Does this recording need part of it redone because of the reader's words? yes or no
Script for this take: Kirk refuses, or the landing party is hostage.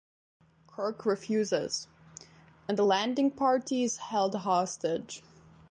yes